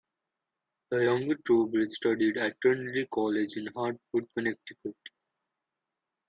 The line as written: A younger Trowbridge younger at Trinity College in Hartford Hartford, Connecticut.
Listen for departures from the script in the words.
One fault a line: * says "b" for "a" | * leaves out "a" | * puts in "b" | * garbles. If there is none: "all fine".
* says "The" for "A"
* says "studied" for "younger"
* leaves out "Hartford"